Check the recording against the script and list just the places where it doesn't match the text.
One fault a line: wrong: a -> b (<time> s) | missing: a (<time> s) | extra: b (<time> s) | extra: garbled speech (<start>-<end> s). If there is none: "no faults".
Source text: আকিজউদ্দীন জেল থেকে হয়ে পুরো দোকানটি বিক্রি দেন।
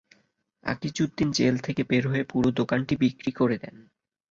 extra: বের (1.8 s)
extra: করে (3.3 s)